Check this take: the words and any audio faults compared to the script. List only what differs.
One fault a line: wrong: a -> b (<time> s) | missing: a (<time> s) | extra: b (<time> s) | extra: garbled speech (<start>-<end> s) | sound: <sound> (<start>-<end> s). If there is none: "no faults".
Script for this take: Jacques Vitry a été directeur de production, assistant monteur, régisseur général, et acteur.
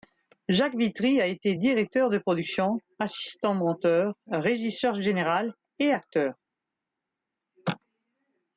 no faults